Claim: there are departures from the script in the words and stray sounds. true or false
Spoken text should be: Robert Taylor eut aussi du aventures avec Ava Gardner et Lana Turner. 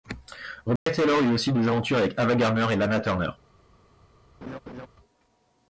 true